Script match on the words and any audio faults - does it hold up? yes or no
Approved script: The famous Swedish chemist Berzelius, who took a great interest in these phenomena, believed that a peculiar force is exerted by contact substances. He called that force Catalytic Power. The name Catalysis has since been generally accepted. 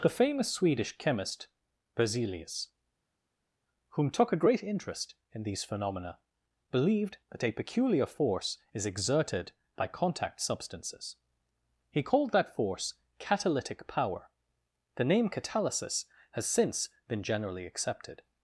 no